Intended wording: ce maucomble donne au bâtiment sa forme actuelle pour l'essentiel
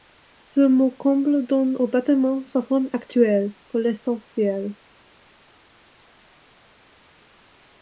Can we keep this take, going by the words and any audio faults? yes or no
yes